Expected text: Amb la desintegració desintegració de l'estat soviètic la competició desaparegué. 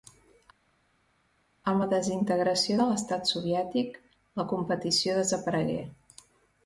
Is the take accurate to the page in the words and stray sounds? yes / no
no